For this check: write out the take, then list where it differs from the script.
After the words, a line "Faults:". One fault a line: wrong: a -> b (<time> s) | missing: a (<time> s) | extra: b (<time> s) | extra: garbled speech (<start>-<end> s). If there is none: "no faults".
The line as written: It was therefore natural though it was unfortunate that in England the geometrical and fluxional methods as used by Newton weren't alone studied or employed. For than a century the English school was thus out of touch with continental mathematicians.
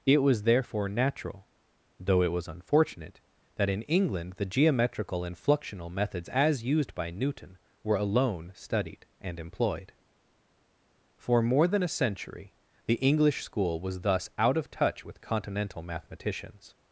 It was therefore natural though it was unfortunate that in England the geometrical and fluxional methods as used by Newton were alone studied and employed. For more than a century the English school was thus out of touch with continental mathematicians.
Faults:
wrong: weren't -> were (7.8 s)
wrong: or -> and (9.2 s)
extra: more (11.4 s)